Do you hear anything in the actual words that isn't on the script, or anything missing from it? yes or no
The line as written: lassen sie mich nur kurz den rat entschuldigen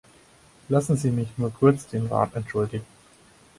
no